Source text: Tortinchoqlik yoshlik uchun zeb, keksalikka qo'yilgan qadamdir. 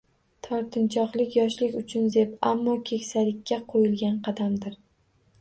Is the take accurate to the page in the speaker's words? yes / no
no